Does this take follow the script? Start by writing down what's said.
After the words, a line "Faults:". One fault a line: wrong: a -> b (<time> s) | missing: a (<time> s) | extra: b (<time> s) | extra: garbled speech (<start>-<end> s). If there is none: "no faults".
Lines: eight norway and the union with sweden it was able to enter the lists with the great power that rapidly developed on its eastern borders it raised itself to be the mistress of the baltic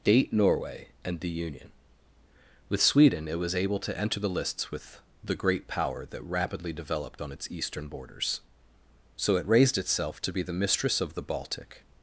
date norway and the union with sweden it was able to enter the lists with the great power that rapidly developed on its eastern borders so it raised itself to be the mistress of the baltic
Faults:
wrong: eight -> date (0.0 s)
extra: so (9.2 s)